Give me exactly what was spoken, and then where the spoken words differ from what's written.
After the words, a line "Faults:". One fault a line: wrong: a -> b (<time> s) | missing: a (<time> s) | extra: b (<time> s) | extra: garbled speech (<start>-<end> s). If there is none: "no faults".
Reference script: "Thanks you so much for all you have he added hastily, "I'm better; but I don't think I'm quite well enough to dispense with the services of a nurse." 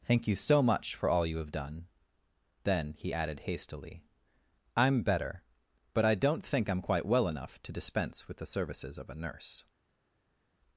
"Thank you so much for all you have done," then he added hastily, "I'm better; but I don't think I'm quite well enough to dispense with the services of a nurse."
Faults:
wrong: Thanks -> Thank (0.0 s)
extra: done then (1.5 s)